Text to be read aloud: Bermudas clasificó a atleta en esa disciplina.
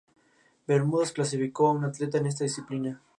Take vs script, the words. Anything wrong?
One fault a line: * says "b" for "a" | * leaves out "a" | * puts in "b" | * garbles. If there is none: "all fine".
* puts in "un"
* says "esta" for "esa"